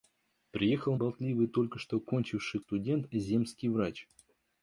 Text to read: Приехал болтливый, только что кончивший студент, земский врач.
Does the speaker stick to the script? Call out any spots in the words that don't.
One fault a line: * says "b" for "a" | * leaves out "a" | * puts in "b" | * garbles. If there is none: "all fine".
all fine